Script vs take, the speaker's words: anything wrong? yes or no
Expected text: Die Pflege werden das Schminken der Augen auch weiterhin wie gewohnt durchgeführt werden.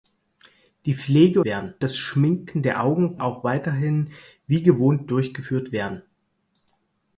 no